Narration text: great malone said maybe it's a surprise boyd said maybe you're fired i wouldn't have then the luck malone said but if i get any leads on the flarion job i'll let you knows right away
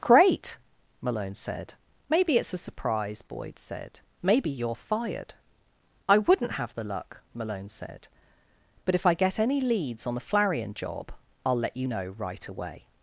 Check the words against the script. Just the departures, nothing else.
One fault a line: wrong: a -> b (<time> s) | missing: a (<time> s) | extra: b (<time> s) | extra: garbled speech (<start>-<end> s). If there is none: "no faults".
missing: then (6.7 s)
wrong: knows -> know (11.8 s)